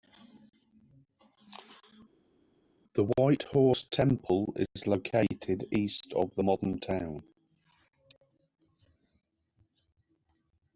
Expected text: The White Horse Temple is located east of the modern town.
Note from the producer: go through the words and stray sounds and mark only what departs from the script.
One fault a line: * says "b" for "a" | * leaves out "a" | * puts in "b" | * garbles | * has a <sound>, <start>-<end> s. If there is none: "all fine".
all fine